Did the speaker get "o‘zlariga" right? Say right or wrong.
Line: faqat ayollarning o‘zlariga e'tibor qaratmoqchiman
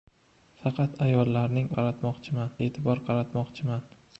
wrong